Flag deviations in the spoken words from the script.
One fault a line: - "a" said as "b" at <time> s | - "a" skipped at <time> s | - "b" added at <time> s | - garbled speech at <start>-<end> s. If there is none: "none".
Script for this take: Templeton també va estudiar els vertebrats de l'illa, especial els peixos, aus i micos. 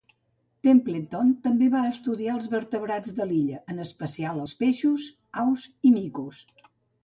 - "en" added at 3.7 s